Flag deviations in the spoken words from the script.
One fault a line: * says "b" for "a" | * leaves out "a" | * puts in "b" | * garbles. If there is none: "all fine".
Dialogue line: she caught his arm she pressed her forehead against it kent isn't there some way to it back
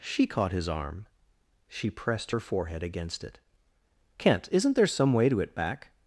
all fine